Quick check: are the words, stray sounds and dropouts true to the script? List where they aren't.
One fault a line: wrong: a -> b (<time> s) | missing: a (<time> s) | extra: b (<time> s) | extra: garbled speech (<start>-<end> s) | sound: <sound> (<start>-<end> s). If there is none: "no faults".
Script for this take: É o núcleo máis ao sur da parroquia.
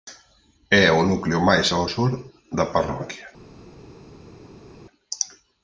no faults